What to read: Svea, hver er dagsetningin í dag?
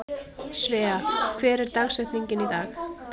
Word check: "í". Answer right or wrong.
right